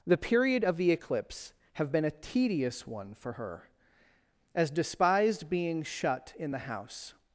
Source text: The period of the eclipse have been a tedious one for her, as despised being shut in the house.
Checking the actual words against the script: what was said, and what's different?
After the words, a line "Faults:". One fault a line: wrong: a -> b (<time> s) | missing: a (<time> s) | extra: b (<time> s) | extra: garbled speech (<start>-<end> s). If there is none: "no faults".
The period of the eclipse have been a tedious one for her, as despised being shut in the house.
Faults:
no faults